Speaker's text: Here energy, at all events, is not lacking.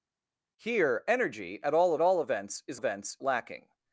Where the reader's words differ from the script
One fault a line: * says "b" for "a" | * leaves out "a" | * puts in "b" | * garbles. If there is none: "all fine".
* puts in "all"
* says "events" for "not"